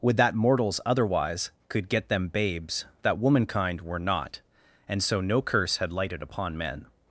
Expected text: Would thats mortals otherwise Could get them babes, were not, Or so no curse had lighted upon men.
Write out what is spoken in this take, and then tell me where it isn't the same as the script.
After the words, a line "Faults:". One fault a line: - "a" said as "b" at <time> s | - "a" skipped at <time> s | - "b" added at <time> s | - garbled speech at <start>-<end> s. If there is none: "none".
Would that mortals otherwise Could get them babes, that womankind were not, And so no curse had lighted upon men.
Faults:
- "thats" said as "that" at 0.2 s
- "that womankind" added at 3.0 s
- "Or" said as "And" at 4.9 s